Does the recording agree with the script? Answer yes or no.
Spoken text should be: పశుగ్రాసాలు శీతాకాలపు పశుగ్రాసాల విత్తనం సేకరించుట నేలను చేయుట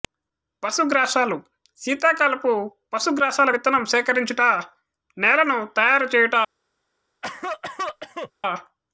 no